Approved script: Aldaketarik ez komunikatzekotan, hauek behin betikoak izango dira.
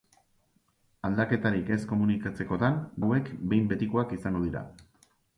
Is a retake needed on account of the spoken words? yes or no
no